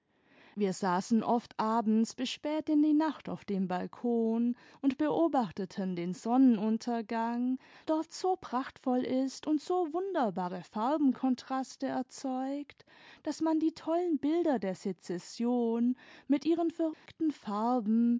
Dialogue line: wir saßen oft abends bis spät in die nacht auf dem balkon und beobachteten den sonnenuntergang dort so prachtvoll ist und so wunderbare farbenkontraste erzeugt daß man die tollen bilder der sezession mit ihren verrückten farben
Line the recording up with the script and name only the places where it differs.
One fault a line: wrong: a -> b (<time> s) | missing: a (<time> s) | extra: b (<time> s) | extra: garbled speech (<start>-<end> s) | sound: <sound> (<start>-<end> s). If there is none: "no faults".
sound: dropout (16.9-17.1 s)